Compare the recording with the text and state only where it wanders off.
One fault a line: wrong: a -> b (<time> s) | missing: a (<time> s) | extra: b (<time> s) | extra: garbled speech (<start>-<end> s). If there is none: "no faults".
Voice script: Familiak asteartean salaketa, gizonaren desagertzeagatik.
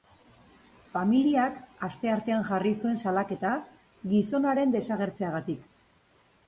extra: jarri zuen (2.5 s)